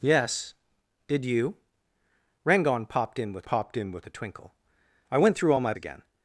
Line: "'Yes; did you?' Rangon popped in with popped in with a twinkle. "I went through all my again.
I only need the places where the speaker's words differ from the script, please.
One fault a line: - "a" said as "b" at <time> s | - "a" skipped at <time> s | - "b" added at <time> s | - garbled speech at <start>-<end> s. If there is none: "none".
none